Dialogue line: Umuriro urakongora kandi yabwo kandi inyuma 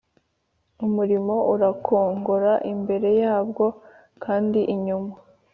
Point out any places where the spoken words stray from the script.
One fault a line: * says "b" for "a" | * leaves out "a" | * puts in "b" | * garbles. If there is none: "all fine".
* says "imbere" for "kandi"